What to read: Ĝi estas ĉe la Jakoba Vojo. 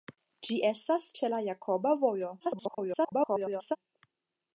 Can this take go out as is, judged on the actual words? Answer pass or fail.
fail